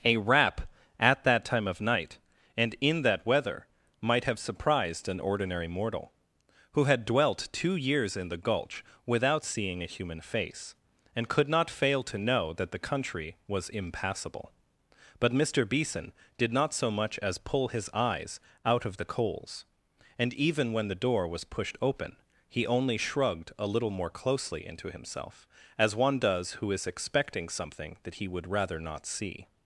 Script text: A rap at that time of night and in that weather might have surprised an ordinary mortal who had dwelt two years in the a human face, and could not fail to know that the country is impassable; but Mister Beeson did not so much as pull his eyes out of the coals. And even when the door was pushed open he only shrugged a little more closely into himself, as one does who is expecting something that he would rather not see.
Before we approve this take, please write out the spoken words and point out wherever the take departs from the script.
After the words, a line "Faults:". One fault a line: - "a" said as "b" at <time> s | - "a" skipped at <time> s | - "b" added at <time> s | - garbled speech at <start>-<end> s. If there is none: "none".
A rap at that time of night and in that weather might have surprised an ordinary mortal who had dwelt two years in the gulch without seeing a human face, and could not fail to know that the country was impassable; but Mister Beeson did not so much as pull his eyes out of the coals. And even when the door was pushed open he only shrugged a little more closely into himself, as one does who is expecting something that he would rather not see.
Faults:
- "gulch without seeing" added at 8.4 s
- "is" said as "was" at 13.5 s